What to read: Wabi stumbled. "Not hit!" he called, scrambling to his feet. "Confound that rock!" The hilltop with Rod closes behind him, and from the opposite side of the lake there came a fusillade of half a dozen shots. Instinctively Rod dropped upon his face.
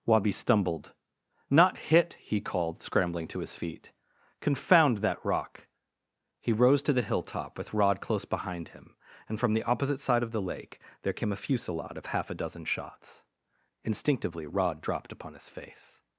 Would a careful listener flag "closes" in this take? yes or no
yes